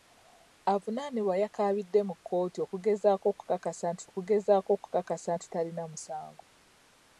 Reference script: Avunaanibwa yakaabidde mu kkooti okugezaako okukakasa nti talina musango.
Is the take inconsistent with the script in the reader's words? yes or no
yes